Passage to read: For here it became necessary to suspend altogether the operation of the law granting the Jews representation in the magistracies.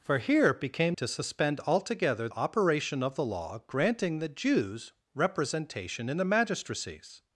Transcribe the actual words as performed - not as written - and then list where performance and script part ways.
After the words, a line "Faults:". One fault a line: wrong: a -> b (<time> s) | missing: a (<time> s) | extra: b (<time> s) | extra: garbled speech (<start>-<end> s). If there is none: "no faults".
For here it became to suspend altogether operation of the law granting the Jews representation in the magistracies.
Faults:
missing: necessary (1.0 s)
missing: the (2.3 s)